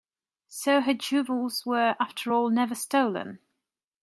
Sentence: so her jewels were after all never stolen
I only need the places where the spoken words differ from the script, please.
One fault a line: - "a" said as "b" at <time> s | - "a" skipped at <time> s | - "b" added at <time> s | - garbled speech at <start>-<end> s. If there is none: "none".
none